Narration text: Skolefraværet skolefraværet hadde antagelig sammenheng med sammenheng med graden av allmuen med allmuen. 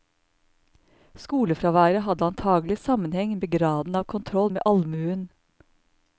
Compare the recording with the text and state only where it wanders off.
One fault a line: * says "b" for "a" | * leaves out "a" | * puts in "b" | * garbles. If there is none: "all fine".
* leaves out "skolefraværet"
* leaves out "sammenheng med"
* says "kontroll" for "allmuen"